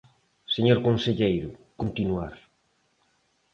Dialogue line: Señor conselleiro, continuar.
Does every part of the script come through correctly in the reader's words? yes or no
yes